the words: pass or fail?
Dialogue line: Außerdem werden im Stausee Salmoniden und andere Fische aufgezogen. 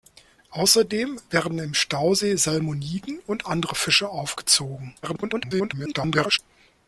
fail